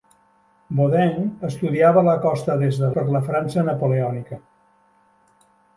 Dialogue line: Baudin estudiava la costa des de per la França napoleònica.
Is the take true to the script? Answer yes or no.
yes